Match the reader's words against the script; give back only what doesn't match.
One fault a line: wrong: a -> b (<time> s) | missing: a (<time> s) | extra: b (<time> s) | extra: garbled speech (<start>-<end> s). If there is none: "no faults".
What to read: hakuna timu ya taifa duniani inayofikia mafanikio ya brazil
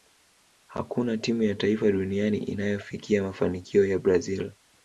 no faults